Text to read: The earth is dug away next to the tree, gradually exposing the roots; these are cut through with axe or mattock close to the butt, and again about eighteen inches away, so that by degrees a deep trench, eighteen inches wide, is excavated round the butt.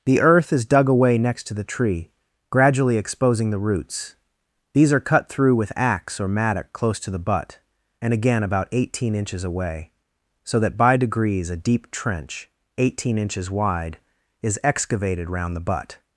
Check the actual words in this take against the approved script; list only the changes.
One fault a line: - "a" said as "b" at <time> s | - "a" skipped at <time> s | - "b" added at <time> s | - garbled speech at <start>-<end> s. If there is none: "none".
none